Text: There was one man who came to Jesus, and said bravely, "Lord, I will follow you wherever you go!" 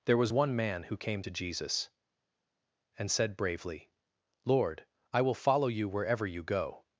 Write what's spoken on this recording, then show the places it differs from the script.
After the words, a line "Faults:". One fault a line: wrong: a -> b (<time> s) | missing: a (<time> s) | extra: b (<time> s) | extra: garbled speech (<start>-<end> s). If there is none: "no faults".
There was one man who came to Jesus, and said bravely, "Lord, I will follow you wherever you go!"
Faults:
no faults